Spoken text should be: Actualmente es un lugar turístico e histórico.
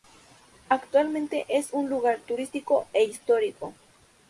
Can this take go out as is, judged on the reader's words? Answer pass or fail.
pass